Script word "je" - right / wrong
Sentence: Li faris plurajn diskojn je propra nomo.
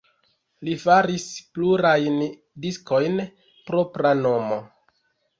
wrong